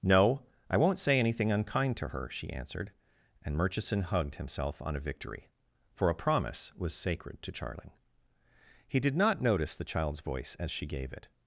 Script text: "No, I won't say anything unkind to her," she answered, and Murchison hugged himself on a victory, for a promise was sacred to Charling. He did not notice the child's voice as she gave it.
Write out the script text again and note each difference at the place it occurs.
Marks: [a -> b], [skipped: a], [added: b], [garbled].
"No, I won't say anything unkind to her," she answered, and Murchison hugged himself on a victory, for a promise was sacred to Charling. He did not notice the child's voice as she gave it.